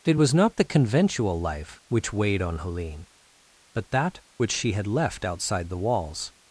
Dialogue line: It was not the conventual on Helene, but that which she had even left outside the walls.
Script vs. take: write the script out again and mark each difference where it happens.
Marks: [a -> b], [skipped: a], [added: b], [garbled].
It was not the conventual [added: life which weighed] on Helene, but that which she had [skipped: even] left outside the walls.